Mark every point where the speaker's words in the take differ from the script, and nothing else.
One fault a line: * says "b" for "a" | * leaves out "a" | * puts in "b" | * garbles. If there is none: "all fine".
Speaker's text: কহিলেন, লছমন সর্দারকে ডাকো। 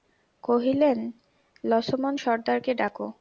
all fine